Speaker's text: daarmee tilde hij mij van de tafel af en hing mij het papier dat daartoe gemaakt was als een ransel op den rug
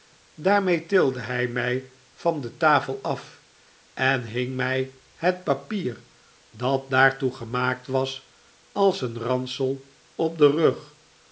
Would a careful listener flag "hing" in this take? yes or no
no